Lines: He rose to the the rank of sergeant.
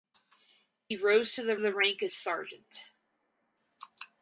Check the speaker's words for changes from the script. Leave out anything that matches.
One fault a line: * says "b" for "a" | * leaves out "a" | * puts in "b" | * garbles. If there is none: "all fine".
all fine